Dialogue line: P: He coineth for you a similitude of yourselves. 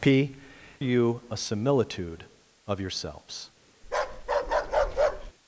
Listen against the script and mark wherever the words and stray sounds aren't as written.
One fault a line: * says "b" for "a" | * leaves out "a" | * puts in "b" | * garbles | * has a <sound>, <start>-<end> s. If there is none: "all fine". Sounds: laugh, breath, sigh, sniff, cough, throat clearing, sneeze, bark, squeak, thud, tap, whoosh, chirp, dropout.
* leaves out "He coineth for"
* has a bark, 3.8-5.3 s